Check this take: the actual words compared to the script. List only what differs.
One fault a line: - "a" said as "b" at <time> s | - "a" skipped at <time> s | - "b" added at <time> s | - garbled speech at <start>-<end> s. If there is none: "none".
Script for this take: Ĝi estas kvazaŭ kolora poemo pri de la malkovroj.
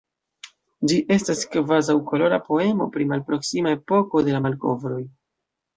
- "malproksima epoko" added at 3.1 s